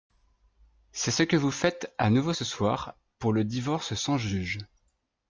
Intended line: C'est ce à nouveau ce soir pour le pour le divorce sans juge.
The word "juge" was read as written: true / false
true